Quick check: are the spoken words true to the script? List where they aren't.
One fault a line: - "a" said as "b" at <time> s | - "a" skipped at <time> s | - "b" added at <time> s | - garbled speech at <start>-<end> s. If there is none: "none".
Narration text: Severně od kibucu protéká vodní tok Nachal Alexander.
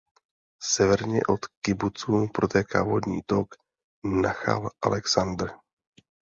none